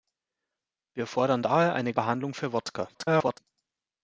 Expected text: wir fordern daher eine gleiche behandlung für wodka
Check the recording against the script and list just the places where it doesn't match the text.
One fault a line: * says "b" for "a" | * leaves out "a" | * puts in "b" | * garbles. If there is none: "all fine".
* leaves out "gleiche"
* garbles